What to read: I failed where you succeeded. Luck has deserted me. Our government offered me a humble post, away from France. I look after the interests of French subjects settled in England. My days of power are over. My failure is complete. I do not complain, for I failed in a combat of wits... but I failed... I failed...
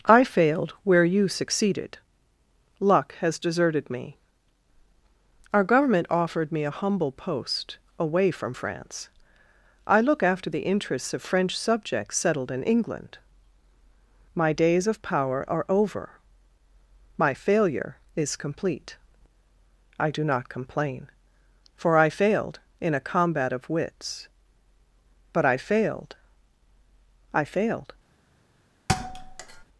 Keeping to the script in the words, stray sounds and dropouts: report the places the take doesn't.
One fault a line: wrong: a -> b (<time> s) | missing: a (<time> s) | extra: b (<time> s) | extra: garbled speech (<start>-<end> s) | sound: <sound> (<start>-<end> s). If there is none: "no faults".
sound: thud (28.9-29.6 s)